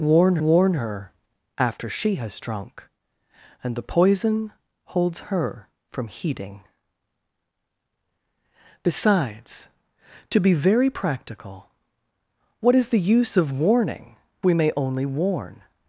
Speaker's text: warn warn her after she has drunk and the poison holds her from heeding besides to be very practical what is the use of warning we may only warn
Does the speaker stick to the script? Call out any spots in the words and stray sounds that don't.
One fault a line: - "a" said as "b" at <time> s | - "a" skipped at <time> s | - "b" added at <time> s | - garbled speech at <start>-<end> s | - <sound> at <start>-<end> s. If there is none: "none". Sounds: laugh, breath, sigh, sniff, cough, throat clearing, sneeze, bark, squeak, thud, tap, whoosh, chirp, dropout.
none